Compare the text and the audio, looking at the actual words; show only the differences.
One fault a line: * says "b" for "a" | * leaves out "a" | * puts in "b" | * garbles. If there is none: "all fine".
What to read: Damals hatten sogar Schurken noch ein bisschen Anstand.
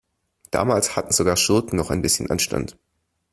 all fine